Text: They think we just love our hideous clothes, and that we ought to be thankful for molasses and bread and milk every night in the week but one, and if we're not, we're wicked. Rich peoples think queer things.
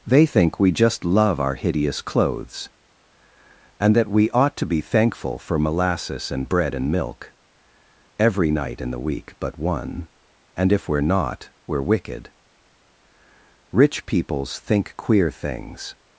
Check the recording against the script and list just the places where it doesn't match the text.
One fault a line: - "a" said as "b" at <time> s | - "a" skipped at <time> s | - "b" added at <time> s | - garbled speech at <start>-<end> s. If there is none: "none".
none